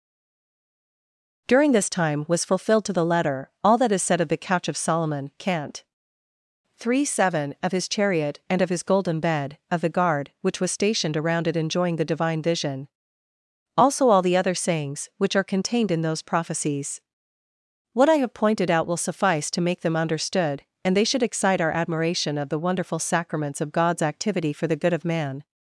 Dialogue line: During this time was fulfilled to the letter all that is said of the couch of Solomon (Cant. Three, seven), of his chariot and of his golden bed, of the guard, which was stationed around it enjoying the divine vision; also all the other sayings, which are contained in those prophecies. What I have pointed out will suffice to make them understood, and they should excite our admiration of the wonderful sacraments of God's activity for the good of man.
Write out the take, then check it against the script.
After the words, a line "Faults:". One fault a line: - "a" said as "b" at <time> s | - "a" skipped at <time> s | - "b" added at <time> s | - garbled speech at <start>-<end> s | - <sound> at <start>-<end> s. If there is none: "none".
During this time was fulfilled to the letter all that is said of the couch of Solomon (Cant. Three, seven), of his chariot and of his golden bed, of the guard, which was stationed around it enjoying the divine vision; also all the other sayings, which are contained in those prophecies. What I have pointed out will suffice to make them understood, and they should excite our admiration of the wonderful sacraments of God's activity for the good of man.
Faults:
none